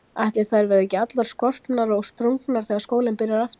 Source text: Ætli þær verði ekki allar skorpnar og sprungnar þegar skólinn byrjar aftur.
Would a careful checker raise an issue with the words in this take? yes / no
no